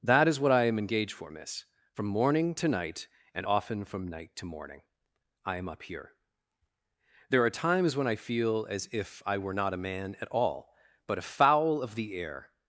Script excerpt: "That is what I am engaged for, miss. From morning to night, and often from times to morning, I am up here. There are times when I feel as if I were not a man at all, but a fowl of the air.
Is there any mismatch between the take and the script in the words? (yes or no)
yes